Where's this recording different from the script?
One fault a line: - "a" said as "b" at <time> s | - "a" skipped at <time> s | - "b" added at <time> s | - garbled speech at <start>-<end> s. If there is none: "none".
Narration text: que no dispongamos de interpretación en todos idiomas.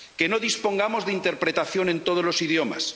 - "los" added at 2.2 s